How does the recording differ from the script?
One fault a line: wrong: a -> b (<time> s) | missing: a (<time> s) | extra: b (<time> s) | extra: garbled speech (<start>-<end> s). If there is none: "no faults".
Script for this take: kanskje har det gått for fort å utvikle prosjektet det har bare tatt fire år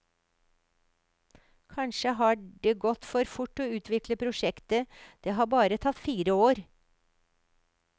no faults